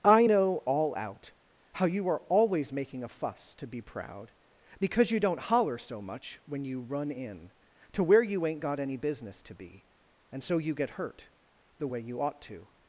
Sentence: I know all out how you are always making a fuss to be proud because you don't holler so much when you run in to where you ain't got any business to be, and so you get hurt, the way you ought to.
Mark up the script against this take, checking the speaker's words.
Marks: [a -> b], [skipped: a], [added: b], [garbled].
I know all out how you are always making a fuss to be proud because you don't holler so much when you run in to where you ain't got any business to be, and so you get hurt, the way you ought to.